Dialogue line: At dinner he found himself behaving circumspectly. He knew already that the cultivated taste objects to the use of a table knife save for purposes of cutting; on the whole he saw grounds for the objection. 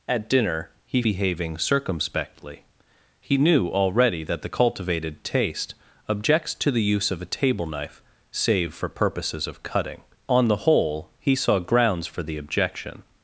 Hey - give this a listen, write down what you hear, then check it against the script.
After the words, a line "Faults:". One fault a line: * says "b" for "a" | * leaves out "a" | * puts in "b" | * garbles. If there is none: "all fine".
At dinner he behaving circumspectly. He knew already that the cultivated taste objects to the use of a table knife save for purposes of cutting; on the whole he saw grounds for the objection.
Faults:
* leaves out "found himself"